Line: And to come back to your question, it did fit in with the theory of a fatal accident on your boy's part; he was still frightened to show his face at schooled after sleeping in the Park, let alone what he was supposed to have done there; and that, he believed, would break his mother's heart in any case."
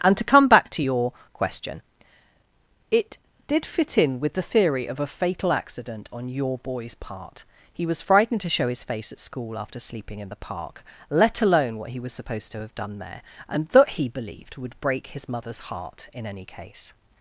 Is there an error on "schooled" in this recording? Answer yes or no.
yes